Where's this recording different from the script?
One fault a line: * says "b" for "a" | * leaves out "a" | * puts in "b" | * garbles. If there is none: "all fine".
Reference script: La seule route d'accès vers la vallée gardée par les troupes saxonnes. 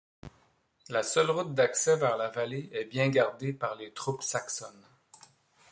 * puts in "est bien"